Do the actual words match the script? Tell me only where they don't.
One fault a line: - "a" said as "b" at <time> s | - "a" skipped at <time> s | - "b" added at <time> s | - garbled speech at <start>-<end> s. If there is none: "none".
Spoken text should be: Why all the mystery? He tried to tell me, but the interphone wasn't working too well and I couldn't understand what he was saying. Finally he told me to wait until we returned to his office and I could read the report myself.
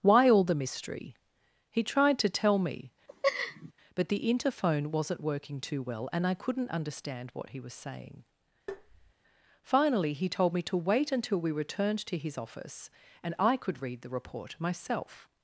none